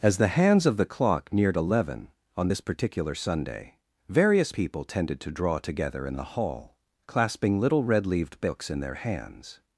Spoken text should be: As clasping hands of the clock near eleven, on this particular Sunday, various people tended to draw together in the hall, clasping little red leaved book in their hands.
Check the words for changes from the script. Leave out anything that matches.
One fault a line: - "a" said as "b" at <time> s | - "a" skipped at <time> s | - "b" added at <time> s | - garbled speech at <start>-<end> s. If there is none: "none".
- "clasping" said as "the" at 0.2 s
- "near" said as "neared" at 1.3 s
- "book" said as "books" at 8.4 s